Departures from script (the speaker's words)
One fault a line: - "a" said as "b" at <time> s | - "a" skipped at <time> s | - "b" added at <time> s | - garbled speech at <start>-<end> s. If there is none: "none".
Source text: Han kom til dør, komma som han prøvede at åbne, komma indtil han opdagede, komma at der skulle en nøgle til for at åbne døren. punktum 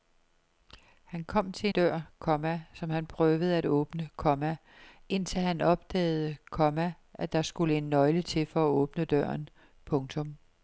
none